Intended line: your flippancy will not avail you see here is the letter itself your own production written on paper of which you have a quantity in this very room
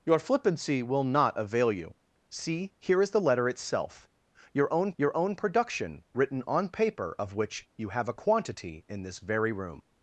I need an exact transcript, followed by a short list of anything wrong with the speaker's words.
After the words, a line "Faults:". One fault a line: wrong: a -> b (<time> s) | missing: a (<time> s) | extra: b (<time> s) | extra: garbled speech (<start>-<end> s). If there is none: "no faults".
your flippancy will not avail you see here is the letter itself your own your own production written on paper of which you have a quantity in this very room
Faults:
extra: your own (5.0 s)